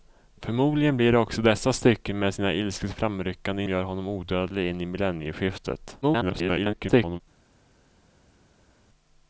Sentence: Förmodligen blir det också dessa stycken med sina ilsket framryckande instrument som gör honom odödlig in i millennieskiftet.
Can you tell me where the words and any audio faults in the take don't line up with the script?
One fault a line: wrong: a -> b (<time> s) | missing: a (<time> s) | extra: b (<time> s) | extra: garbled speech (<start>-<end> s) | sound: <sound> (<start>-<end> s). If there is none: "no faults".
missing: instrument som (3.6 s)
extra: garbled speech (6.0-7.2 s)